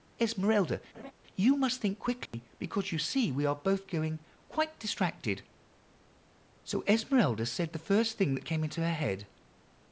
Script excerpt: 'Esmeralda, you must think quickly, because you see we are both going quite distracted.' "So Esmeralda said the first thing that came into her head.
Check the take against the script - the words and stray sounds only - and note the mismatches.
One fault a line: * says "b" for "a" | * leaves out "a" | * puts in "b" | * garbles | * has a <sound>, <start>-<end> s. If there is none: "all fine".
* has a laugh, 0.9-1.1 s
* has a dropout, 2.3-2.3 s